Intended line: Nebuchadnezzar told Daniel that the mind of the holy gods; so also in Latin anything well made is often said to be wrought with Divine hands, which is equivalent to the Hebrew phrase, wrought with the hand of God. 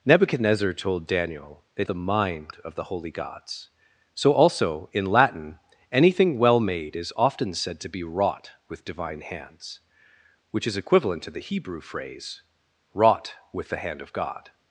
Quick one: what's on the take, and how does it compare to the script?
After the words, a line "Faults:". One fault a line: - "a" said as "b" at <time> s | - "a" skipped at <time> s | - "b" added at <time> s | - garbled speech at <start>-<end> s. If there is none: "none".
Nebuchadnezzar told Daniel that the mind of the holy gods; so also in Latin anything well made is often said to be wrought with Divine hands, which is equivalent to the Hebrew phrase, wrought with the hand of God.
Faults:
none